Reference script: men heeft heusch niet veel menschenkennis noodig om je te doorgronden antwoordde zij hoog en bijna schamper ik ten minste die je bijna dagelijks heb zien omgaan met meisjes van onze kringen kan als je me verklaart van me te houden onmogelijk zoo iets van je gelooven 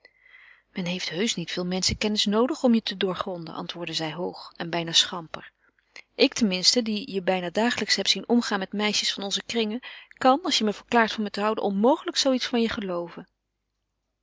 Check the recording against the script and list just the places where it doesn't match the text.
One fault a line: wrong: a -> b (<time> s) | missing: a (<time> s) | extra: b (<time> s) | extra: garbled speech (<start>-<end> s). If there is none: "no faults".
no faults